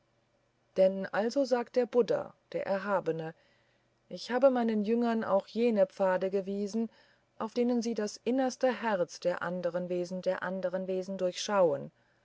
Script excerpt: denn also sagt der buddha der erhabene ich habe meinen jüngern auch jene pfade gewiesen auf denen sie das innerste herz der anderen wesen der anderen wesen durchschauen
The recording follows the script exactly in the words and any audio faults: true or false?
true